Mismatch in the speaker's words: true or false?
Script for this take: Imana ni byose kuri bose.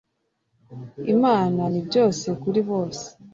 false